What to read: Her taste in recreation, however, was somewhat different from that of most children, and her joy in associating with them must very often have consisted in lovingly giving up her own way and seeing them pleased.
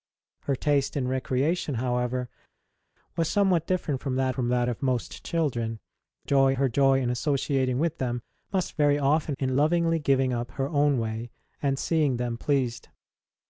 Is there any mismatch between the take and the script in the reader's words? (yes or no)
yes